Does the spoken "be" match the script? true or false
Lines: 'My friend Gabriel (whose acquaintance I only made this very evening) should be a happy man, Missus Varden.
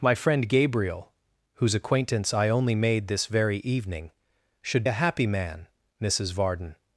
false